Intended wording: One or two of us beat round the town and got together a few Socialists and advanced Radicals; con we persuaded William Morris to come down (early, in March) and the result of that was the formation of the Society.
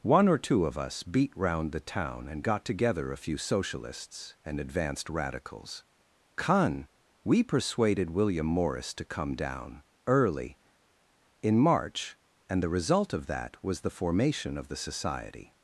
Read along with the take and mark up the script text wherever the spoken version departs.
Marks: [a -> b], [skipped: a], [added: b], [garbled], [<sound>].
One or two of us beat round the town and got together a few Socialists and advanced Radicals; con we persuaded William Morris to come down (early, in March) and the result of that was the formation of the Society.